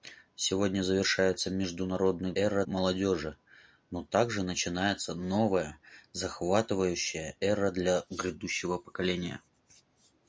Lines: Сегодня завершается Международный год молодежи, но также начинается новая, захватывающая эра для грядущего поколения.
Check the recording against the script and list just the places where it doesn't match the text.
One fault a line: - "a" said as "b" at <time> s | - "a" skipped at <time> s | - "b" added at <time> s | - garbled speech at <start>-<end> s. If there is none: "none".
- "год" said as "эра" at 2.3 s